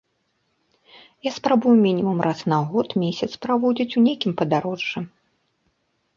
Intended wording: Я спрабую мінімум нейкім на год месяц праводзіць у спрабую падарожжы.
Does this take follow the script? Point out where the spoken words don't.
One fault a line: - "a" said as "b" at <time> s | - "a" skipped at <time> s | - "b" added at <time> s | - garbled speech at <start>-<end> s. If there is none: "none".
- "нейкім" said as "раз" at 2.3 s
- "спрабую" said as "нейкім" at 4.0 s